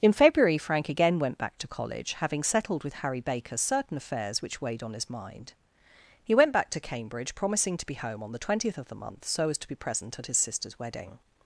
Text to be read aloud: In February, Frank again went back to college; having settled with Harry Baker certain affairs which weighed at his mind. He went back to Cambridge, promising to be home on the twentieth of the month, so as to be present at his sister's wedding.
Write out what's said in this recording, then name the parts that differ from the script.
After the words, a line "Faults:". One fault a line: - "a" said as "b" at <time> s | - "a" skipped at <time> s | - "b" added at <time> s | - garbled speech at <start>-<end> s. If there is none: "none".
In February, Frank again went back to college; having settled with Harry Baker certain affairs which weighed on his mind. He went back to Cambridge, promising to be home on the twentieth of the month, so as to be present at his sister's wedding.
Faults:
- "at" said as "on" at 4.8 s